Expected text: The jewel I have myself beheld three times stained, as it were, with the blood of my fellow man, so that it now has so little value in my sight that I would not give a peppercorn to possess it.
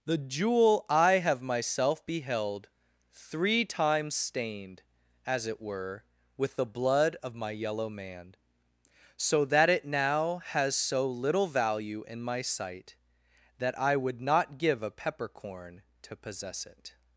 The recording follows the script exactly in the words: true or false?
false